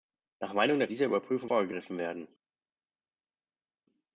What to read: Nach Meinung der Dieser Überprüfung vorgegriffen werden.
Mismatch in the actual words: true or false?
false